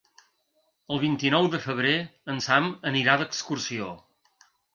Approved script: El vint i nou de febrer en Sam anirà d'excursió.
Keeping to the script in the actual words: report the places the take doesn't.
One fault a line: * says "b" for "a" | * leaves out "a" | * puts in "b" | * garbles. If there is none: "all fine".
all fine